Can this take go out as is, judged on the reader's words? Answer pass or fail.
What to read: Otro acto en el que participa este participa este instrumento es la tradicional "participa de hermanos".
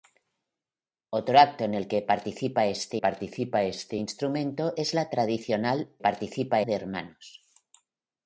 pass